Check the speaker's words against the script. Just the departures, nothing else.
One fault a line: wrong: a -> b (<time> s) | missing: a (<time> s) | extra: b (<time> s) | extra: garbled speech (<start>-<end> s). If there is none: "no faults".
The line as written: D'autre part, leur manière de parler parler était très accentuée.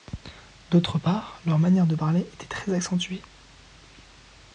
missing: parler (2.3 s)